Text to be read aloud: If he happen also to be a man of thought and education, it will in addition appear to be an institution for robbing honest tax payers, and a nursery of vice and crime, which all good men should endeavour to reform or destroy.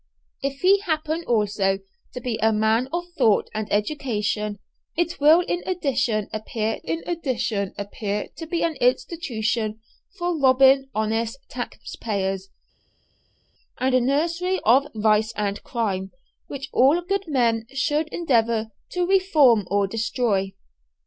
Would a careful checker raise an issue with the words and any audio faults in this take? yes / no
yes